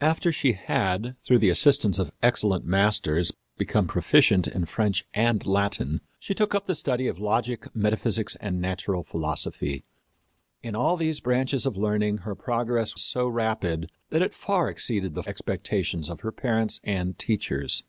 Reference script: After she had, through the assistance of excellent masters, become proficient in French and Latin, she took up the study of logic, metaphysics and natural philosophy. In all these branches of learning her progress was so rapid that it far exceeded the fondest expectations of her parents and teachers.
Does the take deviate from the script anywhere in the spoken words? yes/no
yes